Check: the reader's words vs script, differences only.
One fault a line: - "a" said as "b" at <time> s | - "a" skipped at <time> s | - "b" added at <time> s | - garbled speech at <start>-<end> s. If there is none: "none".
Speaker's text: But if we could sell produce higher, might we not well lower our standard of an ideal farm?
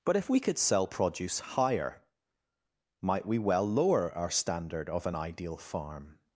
- "not" skipped at 3.4 s